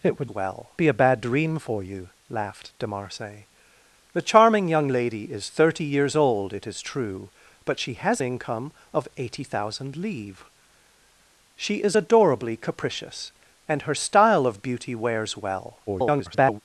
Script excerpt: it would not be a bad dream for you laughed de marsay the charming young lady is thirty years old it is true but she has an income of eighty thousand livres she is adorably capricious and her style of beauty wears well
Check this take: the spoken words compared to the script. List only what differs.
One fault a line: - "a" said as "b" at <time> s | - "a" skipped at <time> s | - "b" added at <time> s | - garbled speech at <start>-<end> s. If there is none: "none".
- "not" said as "well" at 0.3 s
- "an" skipped at 8.2 s
- garbled speech at 15.9-16.6 s